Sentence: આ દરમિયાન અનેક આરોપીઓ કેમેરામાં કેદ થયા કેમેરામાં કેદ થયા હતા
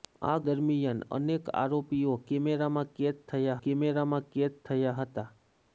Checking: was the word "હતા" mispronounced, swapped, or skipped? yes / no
no